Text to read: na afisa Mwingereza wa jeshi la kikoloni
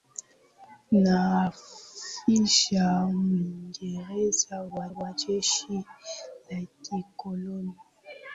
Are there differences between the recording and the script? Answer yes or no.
yes